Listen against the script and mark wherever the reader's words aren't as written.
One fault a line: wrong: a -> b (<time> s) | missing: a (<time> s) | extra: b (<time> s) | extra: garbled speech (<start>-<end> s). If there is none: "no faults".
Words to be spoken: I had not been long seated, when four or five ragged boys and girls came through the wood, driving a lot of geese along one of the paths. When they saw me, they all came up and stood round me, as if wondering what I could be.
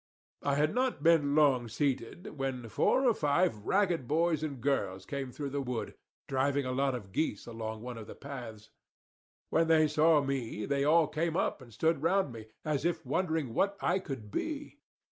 no faults